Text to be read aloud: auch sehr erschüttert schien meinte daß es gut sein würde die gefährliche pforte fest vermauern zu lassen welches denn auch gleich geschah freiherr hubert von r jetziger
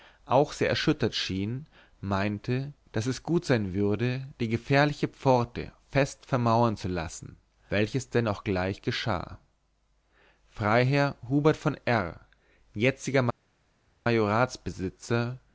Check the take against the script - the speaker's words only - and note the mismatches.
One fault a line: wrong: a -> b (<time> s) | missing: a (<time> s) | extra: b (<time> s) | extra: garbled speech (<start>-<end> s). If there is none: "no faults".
no faults